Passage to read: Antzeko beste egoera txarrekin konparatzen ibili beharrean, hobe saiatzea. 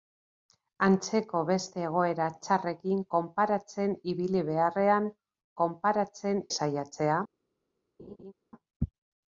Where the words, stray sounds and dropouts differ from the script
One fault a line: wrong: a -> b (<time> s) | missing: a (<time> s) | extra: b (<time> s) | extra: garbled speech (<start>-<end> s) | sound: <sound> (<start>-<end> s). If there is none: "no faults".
wrong: hobe -> konparatzen (5.6 s)
sound: laugh (8.0-8.3 s)